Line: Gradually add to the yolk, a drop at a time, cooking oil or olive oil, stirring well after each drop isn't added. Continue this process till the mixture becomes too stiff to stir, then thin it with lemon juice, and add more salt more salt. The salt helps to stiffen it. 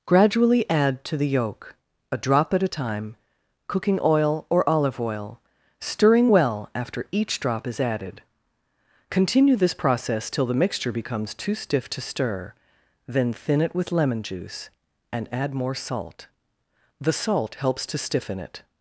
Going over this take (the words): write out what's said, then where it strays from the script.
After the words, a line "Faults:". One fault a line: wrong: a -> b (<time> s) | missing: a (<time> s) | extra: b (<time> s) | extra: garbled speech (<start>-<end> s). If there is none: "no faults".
Gradually add to the yolk, a drop at a time, cooking oil or olive oil, stirring well after each drop is added. Continue this process till the mixture becomes too stiff to stir, then thin it with lemon juice, and add more salt. The salt helps to stiffen it.
Faults:
wrong: isn't -> is (7.7 s)
missing: more salt (16.3 s)